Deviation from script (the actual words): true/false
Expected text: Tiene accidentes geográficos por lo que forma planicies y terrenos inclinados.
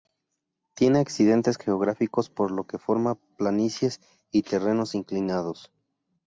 false